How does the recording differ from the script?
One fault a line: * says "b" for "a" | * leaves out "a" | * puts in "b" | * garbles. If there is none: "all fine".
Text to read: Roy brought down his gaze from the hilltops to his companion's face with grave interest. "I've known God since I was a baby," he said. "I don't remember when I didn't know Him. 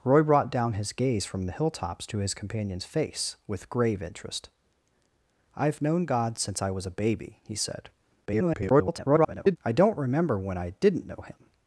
* garbles